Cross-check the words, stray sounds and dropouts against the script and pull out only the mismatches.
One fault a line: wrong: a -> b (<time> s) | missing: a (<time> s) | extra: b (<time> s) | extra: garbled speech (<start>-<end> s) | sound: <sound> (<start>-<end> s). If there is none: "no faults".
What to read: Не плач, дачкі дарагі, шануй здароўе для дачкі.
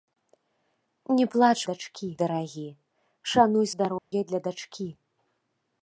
sound: dropout (4.0-4.1 s)